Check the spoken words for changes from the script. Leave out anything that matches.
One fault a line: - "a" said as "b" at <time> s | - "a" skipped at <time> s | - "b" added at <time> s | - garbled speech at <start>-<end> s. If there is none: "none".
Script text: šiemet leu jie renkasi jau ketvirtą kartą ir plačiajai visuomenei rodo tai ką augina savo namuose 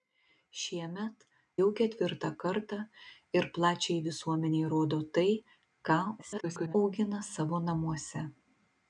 - "leu jie renkasi" skipped at 1.2 s
- garbled speech at 6.2-6.7 s